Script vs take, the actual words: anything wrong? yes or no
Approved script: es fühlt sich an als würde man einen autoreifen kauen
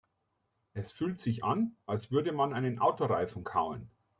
no